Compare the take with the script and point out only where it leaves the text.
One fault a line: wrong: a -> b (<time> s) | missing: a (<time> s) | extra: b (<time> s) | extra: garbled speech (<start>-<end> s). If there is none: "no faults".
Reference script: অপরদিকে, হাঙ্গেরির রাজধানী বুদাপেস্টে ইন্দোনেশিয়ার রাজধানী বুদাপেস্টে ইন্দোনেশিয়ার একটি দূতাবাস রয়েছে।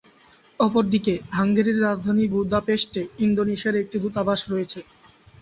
missing: রাজধানী বুদাপেস্টে ইন্দোনেশিয়ার (3.8 s)